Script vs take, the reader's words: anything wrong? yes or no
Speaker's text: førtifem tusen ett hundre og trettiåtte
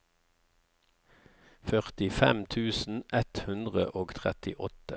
no